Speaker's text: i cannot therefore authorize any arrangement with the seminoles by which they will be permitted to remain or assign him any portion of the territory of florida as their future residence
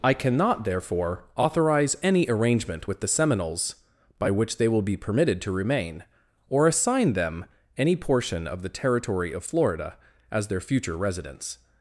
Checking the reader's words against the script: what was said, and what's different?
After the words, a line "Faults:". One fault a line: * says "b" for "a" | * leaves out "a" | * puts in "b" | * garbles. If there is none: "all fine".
i cannot therefore authorize any arrangement with the seminoles by which they will be permitted to remain or assign them any portion of the territory of florida as their future residence
Faults:
* says "them" for "him"